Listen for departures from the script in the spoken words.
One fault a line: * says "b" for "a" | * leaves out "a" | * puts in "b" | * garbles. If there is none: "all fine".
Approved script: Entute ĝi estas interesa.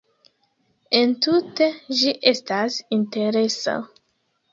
all fine